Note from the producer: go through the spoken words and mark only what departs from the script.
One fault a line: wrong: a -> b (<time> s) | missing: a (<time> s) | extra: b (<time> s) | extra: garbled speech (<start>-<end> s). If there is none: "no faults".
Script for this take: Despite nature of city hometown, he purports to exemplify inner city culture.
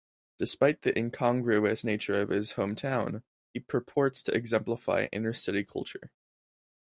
extra: the incongruous (0.8 s)
wrong: city -> his (2.3 s)